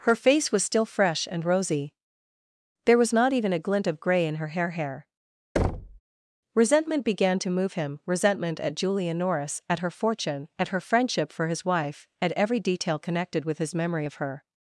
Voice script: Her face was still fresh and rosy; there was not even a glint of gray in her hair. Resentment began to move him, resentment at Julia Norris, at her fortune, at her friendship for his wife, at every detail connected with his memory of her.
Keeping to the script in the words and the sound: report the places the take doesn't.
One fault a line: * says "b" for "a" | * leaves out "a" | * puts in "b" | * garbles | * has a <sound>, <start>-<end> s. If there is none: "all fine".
* puts in "hair"
* has a thud, 5.6-6.0 s